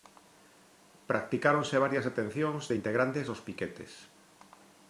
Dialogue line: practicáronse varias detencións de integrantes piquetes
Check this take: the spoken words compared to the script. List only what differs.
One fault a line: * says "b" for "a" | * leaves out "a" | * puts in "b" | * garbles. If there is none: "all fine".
* puts in "dos"